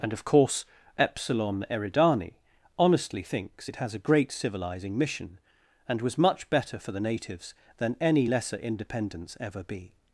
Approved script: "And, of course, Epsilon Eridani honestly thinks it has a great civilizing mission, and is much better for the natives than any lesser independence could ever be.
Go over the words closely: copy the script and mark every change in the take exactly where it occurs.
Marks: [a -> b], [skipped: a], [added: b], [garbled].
"And, of course, Epsilon Eridani honestly thinks it has a great civilizing mission, and [is -> was] much better for the natives than any lesser independence [skipped: could] ever be.